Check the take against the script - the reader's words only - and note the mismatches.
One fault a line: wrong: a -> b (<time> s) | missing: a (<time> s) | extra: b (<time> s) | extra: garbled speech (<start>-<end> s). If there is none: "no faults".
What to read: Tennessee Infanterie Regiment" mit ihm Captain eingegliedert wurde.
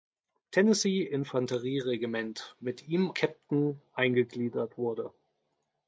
no faults